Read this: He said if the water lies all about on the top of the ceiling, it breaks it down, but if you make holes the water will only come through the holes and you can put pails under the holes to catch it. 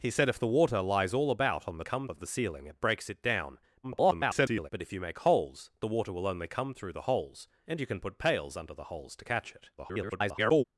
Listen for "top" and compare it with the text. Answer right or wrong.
wrong